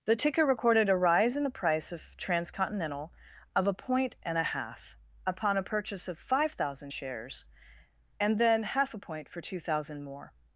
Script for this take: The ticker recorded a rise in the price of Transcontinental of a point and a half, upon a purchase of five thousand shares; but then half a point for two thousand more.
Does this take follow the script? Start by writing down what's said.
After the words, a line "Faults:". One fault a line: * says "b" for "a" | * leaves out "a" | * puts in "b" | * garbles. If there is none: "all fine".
The ticker recorded a rise in the price of Transcontinental of a point and a half, upon a purchase of five thousand shares; and then half a point for two thousand more.
Faults:
* says "and" for "but"